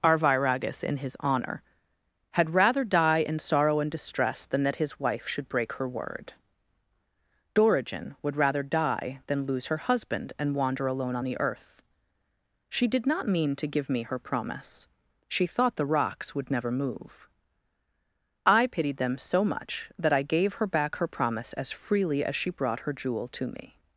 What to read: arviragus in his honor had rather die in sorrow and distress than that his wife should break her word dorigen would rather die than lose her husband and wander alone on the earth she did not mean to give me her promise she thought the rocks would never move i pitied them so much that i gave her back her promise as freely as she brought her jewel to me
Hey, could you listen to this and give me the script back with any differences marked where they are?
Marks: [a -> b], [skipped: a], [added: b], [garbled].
arviragus in his honor had rather die in sorrow and distress than that his wife should break her word dorigen would rather die than lose her husband and wander alone on the earth she did not mean to give me her promise she thought the rocks would never move i pitied them so much that i gave her back her promise as freely as she brought her jewel to me